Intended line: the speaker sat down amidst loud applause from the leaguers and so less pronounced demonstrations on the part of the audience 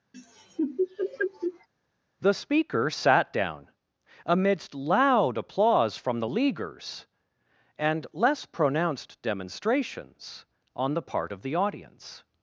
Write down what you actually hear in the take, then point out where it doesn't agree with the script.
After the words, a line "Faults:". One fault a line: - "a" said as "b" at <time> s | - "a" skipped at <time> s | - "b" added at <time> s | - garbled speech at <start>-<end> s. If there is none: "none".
the speaker sat down amidst loud applause from the leaguers and less pronounced demonstrations on the part of the audience
Faults:
- "so" skipped at 8.1 s